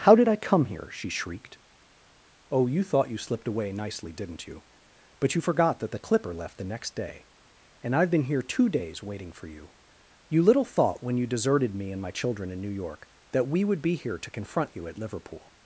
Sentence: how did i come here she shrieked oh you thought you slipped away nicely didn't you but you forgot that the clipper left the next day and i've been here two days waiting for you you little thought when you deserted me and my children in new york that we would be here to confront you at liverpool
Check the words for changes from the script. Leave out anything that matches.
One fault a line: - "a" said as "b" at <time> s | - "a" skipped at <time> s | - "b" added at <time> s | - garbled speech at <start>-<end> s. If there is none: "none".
none